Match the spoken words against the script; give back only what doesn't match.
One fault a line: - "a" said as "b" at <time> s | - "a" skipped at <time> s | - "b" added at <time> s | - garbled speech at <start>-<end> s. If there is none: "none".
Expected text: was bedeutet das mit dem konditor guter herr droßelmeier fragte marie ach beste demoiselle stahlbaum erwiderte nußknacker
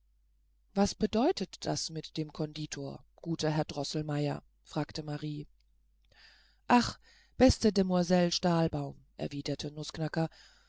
none